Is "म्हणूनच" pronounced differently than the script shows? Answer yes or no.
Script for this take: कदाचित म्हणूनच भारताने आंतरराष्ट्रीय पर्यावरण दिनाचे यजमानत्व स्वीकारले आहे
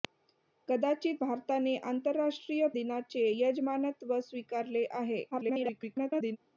yes